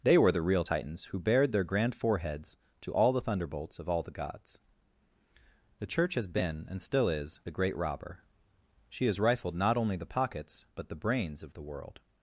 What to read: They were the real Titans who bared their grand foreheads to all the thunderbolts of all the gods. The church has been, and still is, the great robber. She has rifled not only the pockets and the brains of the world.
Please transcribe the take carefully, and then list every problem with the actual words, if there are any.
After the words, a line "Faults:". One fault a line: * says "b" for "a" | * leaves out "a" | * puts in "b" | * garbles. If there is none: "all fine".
They were the real Titans who bared their grand foreheads to all the thunderbolts of all the gods. The church has been, and still is, the great robber. She has rifled not only the pockets but the brains of the world.
Faults:
* says "but" for "and"